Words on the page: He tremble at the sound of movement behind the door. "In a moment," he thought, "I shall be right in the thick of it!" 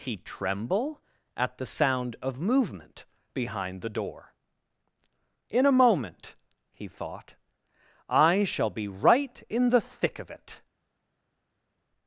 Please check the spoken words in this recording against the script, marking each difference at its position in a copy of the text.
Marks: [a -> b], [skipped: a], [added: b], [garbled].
He tremble at the sound of movement behind the door. "In a moment," he thought, "I shall be right in the thick of it!"